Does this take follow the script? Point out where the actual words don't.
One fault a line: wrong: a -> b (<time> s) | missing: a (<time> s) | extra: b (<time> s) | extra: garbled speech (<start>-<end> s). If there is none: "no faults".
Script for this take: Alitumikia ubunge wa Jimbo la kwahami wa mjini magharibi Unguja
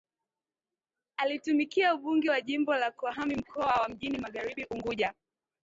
extra: mkoa (3.3 s)